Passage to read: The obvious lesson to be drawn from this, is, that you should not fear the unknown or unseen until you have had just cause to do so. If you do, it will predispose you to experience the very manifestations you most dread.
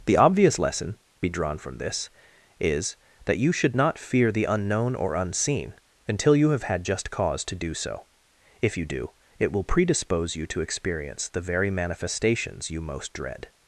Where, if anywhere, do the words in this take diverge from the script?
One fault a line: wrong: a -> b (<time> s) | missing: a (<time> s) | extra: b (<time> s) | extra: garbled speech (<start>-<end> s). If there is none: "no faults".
missing: to (1.0 s)